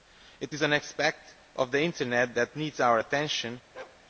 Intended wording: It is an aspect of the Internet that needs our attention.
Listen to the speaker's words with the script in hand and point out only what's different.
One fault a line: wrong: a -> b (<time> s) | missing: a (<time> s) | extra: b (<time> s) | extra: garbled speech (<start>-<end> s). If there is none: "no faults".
no faults